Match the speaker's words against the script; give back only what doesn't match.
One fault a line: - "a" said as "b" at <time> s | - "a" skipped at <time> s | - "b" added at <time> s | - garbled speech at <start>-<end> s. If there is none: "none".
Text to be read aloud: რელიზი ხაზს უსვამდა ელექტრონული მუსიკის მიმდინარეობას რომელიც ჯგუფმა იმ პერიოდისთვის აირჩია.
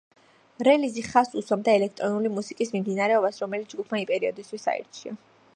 none